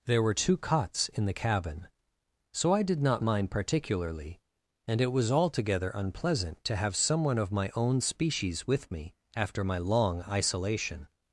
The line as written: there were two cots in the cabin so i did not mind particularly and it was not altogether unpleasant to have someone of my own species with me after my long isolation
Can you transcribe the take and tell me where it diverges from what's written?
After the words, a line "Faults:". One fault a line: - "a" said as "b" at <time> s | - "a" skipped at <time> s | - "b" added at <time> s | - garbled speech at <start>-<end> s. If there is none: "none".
there were two cots in the cabin so i did not mind particularly and it was altogether unpleasant to have someone of my own species with me after my long isolation
Faults:
- "not" skipped at 5.3 s